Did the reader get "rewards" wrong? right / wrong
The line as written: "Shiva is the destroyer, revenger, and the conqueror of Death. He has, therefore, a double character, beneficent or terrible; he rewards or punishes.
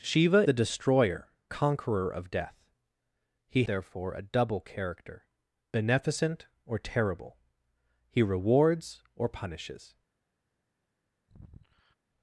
right